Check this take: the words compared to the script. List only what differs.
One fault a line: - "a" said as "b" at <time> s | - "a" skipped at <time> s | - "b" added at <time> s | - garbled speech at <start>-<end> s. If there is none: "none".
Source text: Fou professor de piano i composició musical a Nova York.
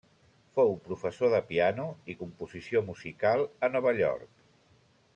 none